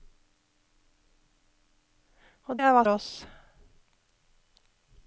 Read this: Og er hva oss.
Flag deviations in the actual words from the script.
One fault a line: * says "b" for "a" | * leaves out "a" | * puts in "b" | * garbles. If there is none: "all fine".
all fine